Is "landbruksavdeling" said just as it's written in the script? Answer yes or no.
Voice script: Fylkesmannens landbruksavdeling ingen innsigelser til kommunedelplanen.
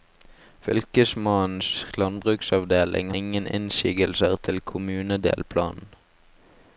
yes